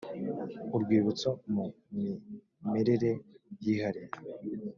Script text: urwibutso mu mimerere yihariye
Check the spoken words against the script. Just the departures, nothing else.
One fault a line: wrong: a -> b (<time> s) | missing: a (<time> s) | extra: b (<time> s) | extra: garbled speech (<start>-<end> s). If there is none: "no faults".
no faults